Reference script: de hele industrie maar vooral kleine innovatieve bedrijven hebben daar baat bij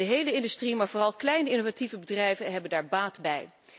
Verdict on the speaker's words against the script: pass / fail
pass